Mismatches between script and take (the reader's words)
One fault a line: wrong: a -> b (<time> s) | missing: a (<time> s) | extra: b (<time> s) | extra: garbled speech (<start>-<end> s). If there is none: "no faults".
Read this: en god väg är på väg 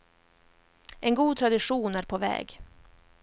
wrong: väg -> tradition (1.4 s)